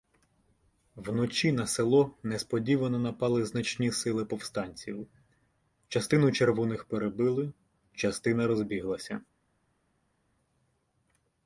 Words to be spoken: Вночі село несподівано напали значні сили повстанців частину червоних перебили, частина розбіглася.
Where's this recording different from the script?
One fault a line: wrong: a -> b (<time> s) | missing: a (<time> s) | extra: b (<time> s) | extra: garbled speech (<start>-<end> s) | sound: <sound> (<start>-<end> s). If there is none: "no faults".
extra: на (1.5 s)